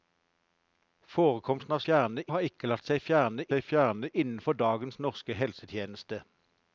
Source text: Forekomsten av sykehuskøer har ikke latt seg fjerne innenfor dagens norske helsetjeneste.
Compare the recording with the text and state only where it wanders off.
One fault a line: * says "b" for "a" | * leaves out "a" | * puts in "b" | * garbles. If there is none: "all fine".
* says "fjerne" for "sykehuskøer"
* puts in "seg fjerne"